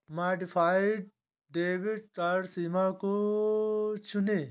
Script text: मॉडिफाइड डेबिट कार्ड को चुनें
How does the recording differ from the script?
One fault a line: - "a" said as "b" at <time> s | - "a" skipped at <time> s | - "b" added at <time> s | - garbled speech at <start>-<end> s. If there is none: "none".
- "सीमा" added at 2.5 s